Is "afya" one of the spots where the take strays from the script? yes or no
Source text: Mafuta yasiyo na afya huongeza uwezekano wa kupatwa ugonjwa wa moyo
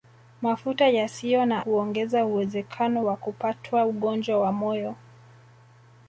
yes